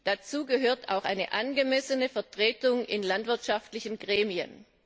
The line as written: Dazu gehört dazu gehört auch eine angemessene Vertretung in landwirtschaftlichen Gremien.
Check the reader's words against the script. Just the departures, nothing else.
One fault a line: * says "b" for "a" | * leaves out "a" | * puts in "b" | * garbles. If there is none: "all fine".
* leaves out "dazu gehört"